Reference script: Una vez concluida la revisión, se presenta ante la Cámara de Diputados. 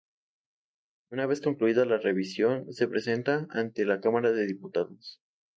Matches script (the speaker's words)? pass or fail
pass